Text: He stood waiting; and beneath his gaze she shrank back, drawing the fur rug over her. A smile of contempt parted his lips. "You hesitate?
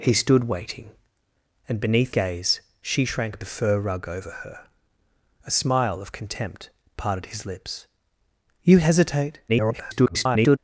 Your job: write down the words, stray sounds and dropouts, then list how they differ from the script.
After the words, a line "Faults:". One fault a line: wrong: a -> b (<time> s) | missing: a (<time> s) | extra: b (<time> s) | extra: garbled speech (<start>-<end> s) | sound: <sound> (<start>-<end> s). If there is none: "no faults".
He stood waiting; and beneath gaze she shrank the fur rug over her. A smile of contempt parted his lips. "You hesitate? [garbled]
Faults:
missing: his (2.1 s)
missing: back drawing (3.4 s)
extra: garbled speech (9.5-10.6 s)